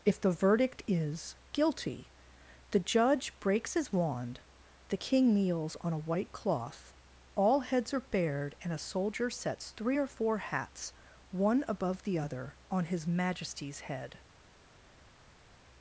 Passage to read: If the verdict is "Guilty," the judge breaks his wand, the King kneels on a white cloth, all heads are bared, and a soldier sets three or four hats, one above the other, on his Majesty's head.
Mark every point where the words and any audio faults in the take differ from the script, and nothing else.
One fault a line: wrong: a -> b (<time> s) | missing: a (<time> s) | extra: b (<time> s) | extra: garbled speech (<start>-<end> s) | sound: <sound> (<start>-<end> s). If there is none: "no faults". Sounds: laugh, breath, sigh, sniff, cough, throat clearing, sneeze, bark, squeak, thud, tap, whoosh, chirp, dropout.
no faults